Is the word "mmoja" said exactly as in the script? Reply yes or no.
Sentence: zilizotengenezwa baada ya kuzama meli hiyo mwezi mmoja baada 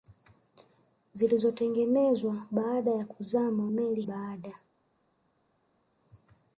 no